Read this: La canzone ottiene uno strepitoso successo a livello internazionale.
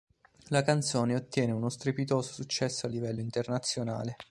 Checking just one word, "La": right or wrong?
right